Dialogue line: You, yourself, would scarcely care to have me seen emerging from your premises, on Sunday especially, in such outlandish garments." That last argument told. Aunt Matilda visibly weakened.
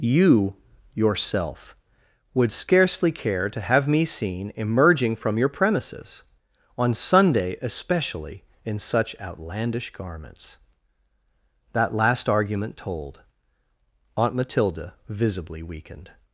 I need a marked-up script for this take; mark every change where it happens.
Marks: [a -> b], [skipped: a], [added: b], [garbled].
You, yourself, would scarcely care to have me seen emerging from your premises, on Sunday especially, in such outlandish garments." That last argument told. Aunt Matilda visibly weakened.